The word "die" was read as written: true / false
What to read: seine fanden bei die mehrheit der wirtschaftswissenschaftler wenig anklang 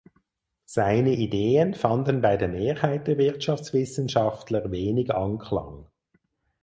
false